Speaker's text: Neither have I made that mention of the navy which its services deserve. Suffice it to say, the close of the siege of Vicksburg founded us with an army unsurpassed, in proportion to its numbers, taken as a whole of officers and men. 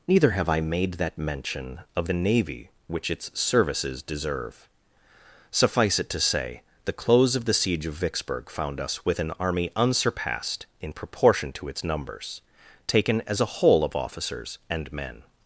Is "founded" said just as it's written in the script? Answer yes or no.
no